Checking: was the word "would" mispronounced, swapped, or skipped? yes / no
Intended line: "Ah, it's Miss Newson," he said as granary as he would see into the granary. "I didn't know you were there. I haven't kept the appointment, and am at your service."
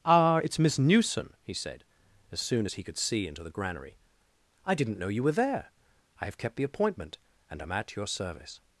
yes